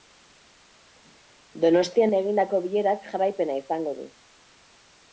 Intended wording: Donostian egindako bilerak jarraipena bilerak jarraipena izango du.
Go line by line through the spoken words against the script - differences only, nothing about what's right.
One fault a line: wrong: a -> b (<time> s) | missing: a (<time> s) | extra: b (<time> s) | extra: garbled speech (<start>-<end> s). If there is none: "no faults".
missing: bilerak jarraipena (3.6 s)